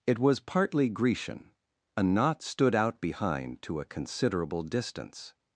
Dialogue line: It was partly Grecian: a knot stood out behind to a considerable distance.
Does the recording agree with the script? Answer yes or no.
yes